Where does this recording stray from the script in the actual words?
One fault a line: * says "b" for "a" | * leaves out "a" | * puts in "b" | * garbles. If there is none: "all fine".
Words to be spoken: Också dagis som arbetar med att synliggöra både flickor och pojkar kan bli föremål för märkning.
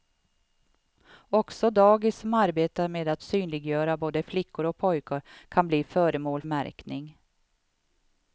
* leaves out "för"